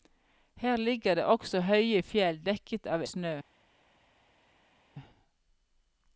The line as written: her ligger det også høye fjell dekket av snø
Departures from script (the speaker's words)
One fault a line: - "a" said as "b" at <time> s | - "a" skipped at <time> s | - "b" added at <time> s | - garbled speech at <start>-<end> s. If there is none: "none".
none